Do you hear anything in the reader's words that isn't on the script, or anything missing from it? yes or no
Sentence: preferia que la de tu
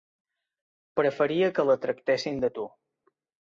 yes